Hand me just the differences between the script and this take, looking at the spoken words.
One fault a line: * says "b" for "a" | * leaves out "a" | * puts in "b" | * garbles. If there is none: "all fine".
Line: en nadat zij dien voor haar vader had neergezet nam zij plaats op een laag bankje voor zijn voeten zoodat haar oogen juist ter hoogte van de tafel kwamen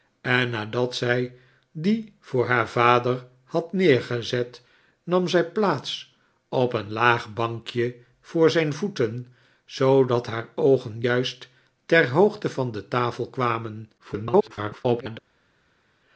* garbles